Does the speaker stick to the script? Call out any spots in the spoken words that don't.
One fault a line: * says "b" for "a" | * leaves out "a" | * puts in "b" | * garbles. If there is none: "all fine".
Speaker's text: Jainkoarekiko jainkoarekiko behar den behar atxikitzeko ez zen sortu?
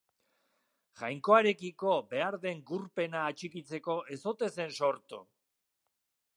* leaves out "jainkoarekiko"
* says "gurpena" for "behar"
* puts in "ote"